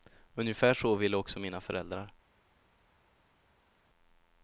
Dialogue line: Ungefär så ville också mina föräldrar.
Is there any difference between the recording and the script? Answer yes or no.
no